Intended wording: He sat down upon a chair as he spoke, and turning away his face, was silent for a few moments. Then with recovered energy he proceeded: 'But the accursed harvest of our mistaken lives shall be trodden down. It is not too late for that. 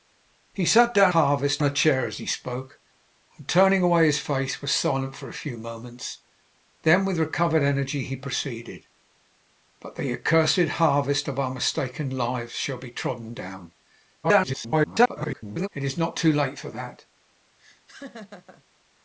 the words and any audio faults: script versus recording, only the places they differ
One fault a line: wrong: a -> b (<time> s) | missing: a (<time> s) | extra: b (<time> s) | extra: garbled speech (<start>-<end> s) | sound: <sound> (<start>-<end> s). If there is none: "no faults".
wrong: upon -> harvest (1.1 s)
extra: garbled speech (14.2-15.7 s)
sound: laugh (17.6-18.6 s)